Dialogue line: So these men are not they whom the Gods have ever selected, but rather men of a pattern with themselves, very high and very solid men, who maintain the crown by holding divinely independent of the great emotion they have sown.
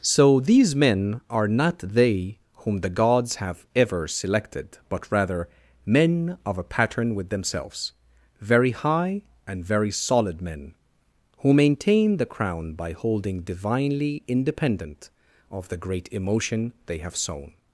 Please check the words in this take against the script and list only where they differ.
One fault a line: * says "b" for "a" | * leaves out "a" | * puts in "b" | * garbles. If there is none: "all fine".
all fine